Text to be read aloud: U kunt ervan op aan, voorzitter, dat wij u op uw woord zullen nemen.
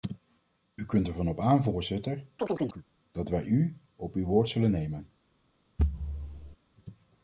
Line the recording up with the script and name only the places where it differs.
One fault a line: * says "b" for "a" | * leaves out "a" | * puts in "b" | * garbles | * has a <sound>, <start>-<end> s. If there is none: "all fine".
* has a chirp, 2.4-2.8 s
* has a thud, 5.8-6.6 s